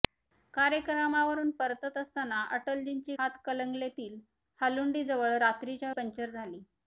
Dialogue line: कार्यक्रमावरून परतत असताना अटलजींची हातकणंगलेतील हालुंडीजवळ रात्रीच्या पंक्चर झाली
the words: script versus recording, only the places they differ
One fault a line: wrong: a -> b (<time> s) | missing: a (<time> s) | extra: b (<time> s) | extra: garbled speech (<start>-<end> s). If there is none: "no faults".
no faults